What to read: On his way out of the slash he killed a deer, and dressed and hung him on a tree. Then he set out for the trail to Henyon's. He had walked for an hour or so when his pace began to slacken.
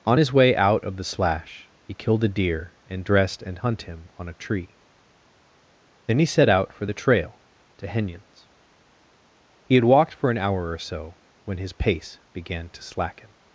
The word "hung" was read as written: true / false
false